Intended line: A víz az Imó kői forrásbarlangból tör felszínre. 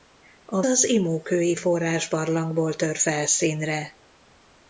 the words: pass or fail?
fail